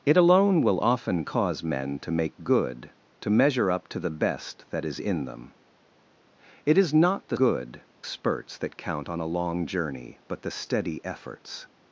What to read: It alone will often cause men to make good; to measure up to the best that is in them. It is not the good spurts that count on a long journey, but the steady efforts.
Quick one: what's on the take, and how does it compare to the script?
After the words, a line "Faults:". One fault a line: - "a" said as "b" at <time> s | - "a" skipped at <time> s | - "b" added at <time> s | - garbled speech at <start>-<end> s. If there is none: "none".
It alone will often cause men to make good; to measure up to the best that is in them. It is not the good spurts that count on a long journey, but the steady efforts.
Faults:
none